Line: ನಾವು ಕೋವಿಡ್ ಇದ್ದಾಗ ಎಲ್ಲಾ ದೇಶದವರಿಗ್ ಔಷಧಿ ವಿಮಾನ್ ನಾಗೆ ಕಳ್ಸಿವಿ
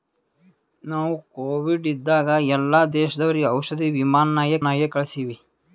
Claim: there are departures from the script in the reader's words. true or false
true